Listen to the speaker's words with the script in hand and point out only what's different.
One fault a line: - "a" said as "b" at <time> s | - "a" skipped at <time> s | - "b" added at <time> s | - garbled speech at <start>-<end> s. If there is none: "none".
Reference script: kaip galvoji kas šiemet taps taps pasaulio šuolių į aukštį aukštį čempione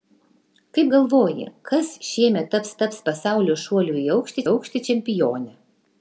none